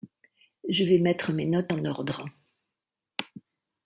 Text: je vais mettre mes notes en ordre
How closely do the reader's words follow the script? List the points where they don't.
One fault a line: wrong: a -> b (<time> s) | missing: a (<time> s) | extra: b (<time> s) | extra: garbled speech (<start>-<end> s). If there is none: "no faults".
no faults